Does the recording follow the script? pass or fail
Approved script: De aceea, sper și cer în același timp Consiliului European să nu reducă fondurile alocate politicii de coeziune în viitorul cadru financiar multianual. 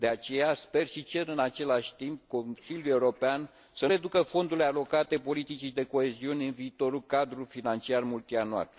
fail